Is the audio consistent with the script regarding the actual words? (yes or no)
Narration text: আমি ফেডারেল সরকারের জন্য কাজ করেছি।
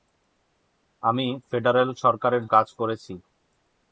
no